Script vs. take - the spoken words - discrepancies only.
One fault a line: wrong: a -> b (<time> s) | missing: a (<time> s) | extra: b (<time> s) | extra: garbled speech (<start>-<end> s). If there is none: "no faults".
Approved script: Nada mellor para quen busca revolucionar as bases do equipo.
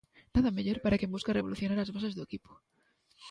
no faults